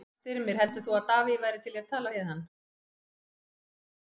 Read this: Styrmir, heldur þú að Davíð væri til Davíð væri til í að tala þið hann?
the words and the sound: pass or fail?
fail